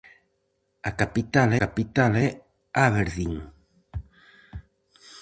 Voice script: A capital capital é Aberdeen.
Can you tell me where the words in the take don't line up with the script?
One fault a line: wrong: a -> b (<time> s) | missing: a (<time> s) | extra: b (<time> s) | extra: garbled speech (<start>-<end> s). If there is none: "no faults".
no faults